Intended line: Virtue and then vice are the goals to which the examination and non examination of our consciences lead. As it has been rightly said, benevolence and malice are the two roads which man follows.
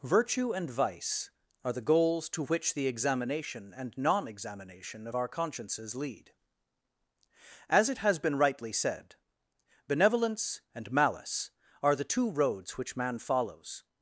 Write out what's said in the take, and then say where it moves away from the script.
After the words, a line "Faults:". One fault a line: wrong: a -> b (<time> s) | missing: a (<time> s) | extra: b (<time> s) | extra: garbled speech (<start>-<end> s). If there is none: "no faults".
Virtue and vice are the goals to which the examination and non examination of our consciences lead. As it has been rightly said, benevolence and malice are the two roads which man follows.
Faults:
missing: then (0.7 s)